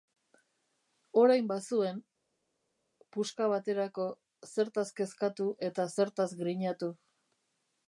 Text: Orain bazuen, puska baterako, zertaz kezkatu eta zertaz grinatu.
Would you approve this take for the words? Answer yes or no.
yes